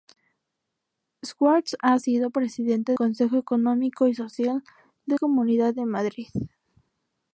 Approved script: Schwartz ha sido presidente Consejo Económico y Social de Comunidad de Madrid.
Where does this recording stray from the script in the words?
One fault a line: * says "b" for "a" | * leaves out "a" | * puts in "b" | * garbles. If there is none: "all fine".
all fine